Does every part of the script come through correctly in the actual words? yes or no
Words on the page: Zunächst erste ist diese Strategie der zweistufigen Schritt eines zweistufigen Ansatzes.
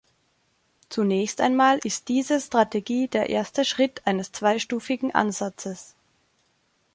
no